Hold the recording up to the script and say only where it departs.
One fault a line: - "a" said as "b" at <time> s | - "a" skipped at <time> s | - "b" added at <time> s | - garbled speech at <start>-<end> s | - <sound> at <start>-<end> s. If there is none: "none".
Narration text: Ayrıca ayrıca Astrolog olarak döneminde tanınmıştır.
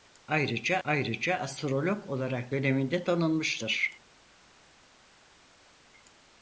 none